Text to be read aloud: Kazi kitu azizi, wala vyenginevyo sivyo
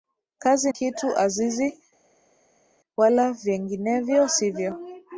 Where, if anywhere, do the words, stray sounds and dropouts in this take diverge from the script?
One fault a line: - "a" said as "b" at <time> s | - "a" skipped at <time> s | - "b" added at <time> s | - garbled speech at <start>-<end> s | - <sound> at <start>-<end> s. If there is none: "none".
none